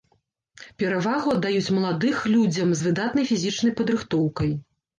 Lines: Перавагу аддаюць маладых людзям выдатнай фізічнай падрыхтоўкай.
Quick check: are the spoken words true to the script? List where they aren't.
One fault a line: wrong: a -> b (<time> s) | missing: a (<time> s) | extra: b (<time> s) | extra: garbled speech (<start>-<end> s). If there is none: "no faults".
extra: з (2.8 s)